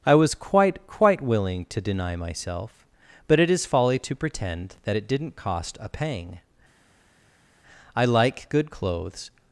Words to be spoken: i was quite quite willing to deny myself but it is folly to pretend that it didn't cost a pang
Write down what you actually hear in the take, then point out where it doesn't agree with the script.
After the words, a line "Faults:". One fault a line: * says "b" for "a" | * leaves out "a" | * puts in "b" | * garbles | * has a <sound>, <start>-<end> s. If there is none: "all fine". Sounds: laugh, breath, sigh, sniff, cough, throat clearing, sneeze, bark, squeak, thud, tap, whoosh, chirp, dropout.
i was quite quite willing to deny myself but it is folly to pretend that it didn't cost a pang i like good clothes
Faults:
* puts in "i like good clothes"